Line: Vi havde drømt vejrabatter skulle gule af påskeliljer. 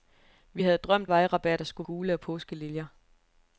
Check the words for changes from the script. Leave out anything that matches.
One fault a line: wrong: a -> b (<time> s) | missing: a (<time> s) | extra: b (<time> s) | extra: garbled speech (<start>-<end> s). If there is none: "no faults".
no faults